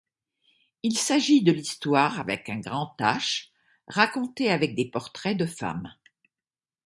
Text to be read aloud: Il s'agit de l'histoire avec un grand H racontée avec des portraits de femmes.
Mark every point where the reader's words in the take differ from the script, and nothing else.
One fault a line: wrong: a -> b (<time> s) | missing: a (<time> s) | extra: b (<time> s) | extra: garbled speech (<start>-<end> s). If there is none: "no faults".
no faults